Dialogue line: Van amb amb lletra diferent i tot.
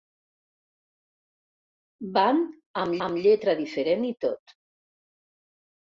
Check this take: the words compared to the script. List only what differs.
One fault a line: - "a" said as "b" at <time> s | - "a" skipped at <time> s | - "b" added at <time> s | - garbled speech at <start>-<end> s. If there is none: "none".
none